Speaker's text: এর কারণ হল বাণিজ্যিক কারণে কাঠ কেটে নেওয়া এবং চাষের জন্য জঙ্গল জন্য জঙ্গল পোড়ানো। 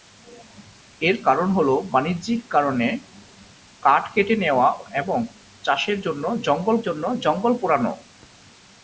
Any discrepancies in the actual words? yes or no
no